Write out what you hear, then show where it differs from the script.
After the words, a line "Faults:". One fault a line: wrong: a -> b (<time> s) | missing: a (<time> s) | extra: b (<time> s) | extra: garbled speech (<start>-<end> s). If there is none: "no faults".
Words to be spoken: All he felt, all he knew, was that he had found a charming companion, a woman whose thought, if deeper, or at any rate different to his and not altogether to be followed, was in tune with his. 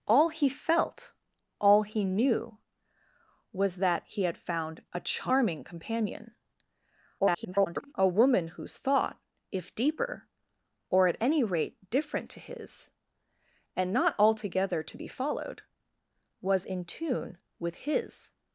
All he felt, all he knew, was that he had found a charming companion, [garbled] a woman whose thought, if deeper, or at any rate different to his and not altogether to be followed, was in tune with his.
Faults:
extra: garbled speech (7.2-7.9 s)